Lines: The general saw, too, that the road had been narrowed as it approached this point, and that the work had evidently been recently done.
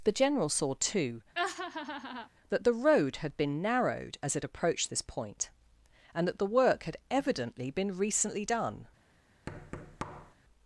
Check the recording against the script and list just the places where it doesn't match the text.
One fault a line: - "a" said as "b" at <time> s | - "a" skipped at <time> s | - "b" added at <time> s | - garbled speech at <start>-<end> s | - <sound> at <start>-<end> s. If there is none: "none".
- laugh at 1.4-2.3 s
- thud at 9.5-10.3 s